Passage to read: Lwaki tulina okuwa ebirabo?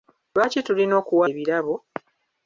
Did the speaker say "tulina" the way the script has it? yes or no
yes